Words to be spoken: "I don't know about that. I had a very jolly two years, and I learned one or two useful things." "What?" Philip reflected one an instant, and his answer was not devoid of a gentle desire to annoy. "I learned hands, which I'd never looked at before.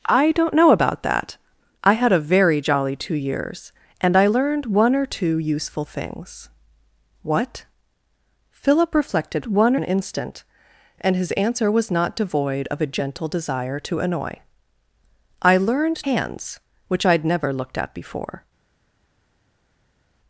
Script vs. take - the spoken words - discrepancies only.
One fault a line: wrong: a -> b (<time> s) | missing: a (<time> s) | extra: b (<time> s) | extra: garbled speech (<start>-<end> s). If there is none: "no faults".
no faults